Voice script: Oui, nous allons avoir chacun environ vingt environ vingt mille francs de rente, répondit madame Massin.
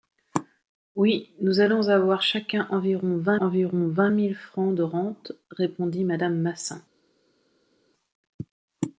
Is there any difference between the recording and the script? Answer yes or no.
no